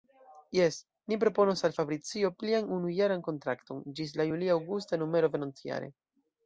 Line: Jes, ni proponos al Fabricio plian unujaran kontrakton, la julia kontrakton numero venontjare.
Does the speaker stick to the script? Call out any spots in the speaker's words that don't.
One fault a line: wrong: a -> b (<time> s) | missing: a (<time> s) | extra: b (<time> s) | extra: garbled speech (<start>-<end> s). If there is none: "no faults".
extra: ĝis (4.0 s)
wrong: kontrakton -> aŭgusta (4.6 s)